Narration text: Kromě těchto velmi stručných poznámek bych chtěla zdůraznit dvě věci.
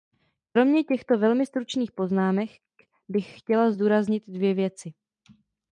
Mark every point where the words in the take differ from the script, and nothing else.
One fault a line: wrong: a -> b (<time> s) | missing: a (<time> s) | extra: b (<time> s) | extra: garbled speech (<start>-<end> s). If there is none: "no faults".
no faults